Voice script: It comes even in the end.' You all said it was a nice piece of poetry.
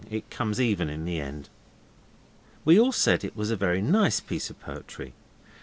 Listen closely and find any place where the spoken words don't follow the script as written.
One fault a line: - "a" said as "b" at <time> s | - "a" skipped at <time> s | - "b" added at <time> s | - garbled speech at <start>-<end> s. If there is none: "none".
- "You" said as "We" at 2.6 s
- "very" added at 3.5 s